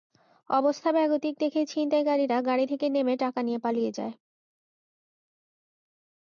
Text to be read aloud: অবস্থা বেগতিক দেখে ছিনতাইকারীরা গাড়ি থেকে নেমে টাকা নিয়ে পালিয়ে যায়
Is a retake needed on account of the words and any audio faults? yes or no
no